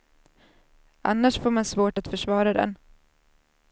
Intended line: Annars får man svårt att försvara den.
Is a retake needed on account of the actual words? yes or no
no